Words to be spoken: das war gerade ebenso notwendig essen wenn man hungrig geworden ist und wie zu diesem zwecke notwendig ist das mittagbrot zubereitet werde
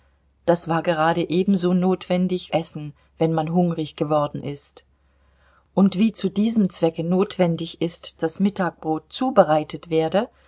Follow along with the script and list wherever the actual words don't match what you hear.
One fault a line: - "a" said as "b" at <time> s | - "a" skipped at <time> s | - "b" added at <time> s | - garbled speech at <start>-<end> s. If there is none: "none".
none